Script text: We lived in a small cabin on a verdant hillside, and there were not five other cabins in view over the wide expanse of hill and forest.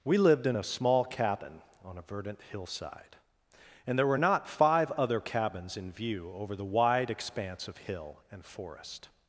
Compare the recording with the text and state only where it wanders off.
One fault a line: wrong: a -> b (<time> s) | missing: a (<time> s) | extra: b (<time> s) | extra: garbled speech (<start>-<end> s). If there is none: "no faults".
no faults